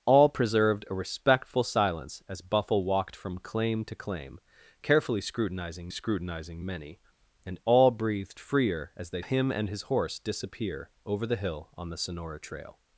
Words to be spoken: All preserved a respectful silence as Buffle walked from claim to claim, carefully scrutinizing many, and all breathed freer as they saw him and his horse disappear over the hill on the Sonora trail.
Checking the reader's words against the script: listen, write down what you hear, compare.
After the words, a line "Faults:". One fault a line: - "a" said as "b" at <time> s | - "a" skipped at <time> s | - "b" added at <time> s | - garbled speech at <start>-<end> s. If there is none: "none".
All preserved a respectful silence as Buffle walked from claim to claim, carefully scrutinizing scrutinizing many, and all breathed freer as they him and his horse disappear over the hill on the Sonora trail.
Faults:
- "scrutinizing" added at 5.9 s
- "saw" skipped at 9.2 s